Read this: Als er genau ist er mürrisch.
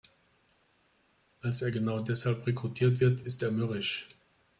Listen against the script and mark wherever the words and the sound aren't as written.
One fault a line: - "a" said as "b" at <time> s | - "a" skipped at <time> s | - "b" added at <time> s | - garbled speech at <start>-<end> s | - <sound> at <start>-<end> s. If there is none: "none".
- "deshalb rekrutiert wird" added at 2.0 s